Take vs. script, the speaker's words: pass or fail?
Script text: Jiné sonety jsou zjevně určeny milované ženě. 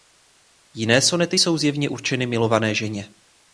pass